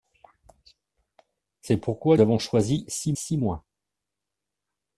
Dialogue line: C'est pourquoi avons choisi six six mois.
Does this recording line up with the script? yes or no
yes